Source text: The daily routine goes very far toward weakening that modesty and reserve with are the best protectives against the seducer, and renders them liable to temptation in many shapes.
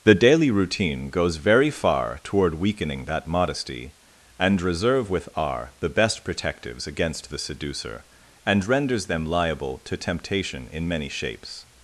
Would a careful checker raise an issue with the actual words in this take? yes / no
no